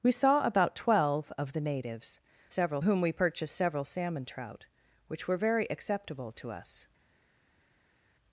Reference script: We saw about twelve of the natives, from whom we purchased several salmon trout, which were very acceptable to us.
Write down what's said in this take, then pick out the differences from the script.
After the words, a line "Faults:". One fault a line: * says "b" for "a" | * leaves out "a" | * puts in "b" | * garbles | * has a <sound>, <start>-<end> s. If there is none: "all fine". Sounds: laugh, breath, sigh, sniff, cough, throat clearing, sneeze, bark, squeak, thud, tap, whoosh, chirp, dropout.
We saw about twelve of the natives, several whom we purchased several salmon trout, which were very acceptable to us.
Faults:
* says "several" for "from"